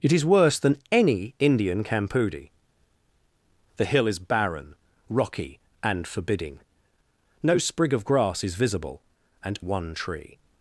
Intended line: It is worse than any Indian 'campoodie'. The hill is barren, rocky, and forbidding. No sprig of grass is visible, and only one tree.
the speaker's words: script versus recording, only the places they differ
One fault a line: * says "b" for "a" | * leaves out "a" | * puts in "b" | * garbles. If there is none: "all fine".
* leaves out "only"